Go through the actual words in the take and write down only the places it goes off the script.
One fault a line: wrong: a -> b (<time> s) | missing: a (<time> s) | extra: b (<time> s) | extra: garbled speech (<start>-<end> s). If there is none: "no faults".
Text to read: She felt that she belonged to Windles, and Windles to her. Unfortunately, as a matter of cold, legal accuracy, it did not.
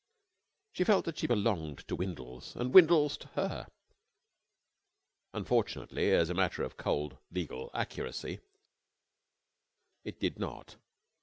no faults